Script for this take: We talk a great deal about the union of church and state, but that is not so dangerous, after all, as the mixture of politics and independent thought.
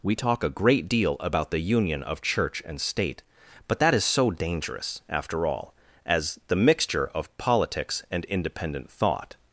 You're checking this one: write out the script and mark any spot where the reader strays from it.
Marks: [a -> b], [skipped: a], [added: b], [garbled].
We talk a great deal about the union of church and state, but that is [skipped: not] so dangerous, after all, as the mixture of politics and independent thought.